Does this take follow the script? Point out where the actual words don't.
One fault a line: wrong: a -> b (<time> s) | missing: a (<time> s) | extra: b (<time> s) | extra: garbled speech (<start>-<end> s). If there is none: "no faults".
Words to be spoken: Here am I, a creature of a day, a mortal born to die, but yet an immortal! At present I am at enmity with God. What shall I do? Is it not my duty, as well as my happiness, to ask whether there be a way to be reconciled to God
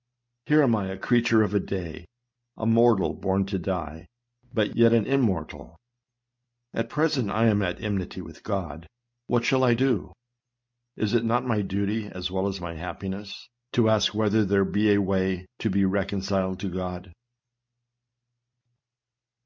no faults